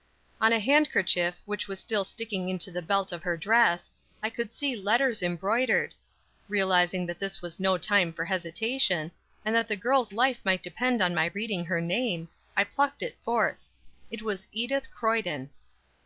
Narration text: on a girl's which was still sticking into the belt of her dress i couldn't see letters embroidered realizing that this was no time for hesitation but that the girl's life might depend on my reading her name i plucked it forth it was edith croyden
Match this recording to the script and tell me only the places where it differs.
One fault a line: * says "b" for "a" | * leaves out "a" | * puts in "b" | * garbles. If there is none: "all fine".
* says "handkerchief" for "girl's"
* says "could" for "couldn't"
* says "and" for "but"